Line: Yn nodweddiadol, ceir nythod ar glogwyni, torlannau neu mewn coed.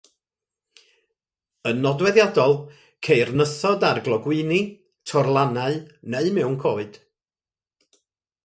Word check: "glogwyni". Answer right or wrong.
right